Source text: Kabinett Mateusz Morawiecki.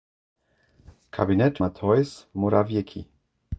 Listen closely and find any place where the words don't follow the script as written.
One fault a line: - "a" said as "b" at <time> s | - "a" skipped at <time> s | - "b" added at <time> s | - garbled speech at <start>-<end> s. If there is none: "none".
none